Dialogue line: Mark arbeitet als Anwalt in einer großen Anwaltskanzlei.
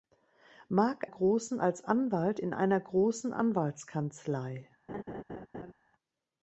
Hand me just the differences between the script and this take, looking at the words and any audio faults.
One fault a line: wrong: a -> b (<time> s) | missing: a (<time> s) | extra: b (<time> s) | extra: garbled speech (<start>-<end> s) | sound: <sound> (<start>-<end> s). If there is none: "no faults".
wrong: arbeitet -> großen (1.0 s)
sound: laugh (4.9-5.7 s)